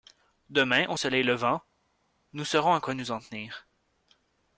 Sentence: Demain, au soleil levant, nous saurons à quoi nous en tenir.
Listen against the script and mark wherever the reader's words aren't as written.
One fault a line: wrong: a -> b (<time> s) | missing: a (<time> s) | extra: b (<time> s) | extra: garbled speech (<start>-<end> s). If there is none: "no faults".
no faults